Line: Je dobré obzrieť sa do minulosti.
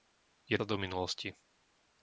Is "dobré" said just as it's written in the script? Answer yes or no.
no